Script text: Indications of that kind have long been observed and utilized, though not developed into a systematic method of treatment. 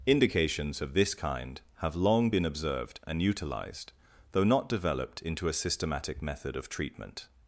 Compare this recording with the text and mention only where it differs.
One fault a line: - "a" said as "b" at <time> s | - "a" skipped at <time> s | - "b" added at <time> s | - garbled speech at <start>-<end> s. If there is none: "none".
- "that" said as "this" at 0.9 s